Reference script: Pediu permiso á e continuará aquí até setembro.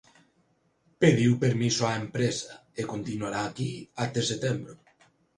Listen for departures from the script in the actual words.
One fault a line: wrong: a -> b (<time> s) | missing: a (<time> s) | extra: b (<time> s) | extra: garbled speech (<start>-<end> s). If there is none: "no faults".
extra: empresa (2.0 s)